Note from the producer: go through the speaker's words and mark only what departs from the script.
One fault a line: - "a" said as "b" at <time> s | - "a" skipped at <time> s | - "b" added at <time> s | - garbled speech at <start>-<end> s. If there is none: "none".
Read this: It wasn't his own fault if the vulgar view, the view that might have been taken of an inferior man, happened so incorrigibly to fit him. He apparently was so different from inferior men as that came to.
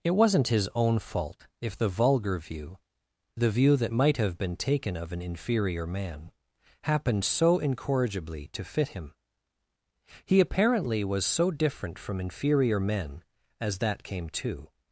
none